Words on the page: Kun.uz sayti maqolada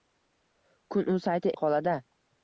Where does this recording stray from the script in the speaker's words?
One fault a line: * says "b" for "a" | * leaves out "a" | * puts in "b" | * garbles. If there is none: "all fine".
all fine